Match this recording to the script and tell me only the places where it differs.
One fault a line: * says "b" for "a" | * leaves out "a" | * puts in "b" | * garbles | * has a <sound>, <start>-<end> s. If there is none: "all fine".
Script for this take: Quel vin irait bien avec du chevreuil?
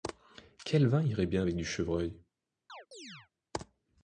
* has a chirp, 2.7-3.3 s